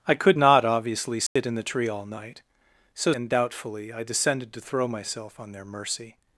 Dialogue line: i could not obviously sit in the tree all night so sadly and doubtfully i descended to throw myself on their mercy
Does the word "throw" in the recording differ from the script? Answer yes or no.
no